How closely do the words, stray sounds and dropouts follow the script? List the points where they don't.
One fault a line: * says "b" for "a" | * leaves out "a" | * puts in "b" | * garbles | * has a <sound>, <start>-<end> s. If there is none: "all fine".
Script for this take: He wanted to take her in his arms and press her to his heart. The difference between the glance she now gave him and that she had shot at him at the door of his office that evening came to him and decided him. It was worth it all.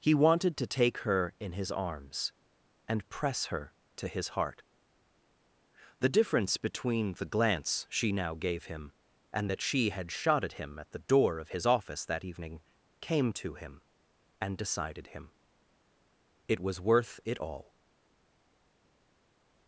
all fine